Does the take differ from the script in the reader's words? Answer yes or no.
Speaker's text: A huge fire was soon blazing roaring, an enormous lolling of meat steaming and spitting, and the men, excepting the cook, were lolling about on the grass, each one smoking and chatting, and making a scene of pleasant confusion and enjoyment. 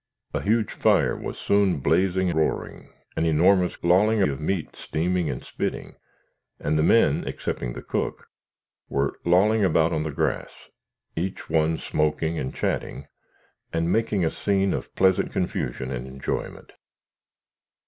no